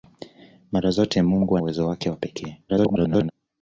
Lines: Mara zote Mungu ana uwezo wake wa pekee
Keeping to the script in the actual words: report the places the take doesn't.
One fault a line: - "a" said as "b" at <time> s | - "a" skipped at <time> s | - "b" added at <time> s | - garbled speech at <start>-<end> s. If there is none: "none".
- "ana" skipped at 1.6 s
- garbled speech at 2.7-3.3 s